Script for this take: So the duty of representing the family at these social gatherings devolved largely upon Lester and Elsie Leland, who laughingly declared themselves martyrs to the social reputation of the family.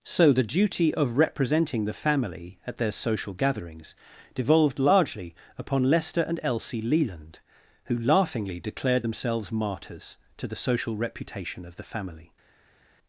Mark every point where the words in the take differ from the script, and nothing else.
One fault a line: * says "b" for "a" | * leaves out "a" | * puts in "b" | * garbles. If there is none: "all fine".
* says "their" for "these"